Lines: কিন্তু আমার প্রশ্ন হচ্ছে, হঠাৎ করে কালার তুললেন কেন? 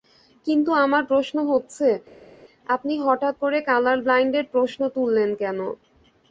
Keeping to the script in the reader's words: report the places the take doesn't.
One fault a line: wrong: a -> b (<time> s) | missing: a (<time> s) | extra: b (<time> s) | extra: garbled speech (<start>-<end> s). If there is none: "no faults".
extra: আপনি (2.7 s)
extra: ব্লাইন্ডের প্রশ্ন (4.0 s)